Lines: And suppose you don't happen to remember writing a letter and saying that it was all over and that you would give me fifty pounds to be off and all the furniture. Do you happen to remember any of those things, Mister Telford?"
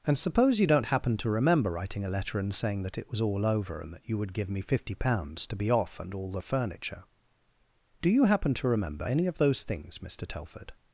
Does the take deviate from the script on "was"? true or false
false